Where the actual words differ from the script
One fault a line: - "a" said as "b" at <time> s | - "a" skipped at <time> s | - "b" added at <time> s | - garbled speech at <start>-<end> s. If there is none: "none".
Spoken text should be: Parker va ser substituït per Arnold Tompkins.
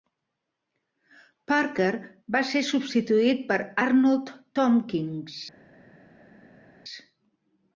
none